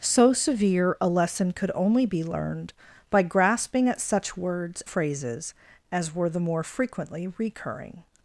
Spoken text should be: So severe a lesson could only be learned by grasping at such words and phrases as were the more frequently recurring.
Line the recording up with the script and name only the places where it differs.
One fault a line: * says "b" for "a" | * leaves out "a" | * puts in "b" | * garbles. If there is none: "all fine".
* leaves out "and"